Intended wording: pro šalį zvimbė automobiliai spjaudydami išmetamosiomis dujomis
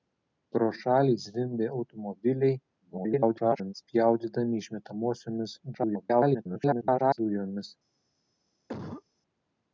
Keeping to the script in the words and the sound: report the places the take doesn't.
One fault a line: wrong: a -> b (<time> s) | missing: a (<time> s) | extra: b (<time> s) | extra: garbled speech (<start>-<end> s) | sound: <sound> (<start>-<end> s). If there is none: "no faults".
extra: garbled speech (2.8-3.7 s)
extra: garbled speech (5.7-7.2 s)
sound: cough (8.7-9.0 s)